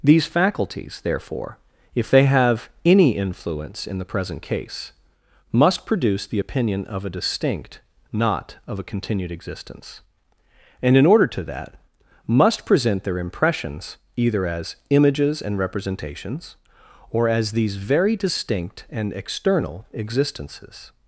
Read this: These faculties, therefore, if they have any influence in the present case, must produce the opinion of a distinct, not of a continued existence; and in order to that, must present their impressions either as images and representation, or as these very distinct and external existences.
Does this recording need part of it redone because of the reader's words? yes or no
yes